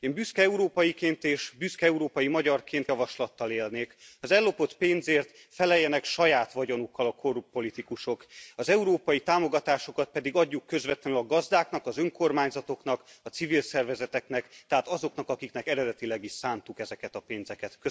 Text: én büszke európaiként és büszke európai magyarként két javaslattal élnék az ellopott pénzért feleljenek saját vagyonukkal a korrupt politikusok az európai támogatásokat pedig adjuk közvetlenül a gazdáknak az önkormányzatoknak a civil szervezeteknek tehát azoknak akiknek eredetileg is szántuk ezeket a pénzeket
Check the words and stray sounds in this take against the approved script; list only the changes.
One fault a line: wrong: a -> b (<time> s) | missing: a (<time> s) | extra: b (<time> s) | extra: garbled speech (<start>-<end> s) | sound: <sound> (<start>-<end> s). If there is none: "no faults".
missing: két (2.9 s)